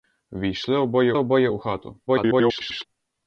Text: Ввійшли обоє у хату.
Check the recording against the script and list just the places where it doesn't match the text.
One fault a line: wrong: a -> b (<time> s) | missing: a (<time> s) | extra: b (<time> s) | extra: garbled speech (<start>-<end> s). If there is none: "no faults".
extra: обоє (1.1 s)
extra: garbled speech (2.1-2.8 s)